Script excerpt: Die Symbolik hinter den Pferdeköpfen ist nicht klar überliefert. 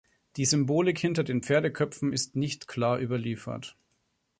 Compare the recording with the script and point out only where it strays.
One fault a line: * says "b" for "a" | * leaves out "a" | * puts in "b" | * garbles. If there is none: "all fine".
all fine